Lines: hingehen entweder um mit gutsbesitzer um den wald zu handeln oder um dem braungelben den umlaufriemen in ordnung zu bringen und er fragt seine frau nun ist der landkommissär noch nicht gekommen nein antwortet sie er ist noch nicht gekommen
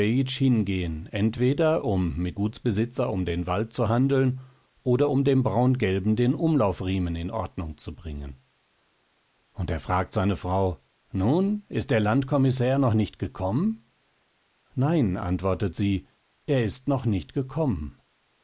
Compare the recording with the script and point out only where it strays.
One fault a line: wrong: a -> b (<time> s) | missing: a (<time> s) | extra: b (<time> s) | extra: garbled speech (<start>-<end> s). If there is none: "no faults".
no faults